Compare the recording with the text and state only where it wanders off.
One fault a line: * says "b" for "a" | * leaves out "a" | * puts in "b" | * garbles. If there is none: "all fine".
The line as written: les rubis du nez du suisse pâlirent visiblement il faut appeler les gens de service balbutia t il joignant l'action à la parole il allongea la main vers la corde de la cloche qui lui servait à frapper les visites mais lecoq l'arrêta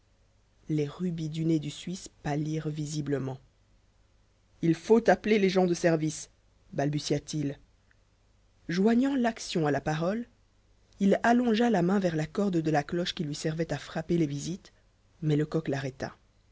all fine